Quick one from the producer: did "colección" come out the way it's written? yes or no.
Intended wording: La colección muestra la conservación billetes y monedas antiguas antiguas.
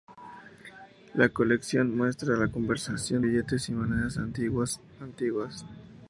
yes